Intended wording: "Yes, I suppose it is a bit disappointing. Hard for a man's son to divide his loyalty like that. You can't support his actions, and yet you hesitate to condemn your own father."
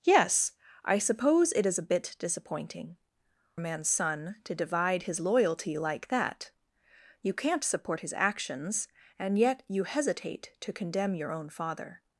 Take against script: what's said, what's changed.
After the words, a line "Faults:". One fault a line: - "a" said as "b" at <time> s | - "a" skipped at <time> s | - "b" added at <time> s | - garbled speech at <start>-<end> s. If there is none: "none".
"Yes, I suppose it is a bit disappointing. A man's son to divide his loyalty like that. You can't support his actions, and yet you hesitate to condemn your own father."
Faults:
- "Hard for" skipped at 3.0 s